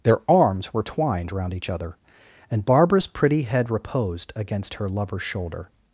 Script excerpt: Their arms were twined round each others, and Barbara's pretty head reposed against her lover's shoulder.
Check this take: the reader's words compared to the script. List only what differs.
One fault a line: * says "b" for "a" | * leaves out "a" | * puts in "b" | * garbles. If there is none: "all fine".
* says "other" for "others"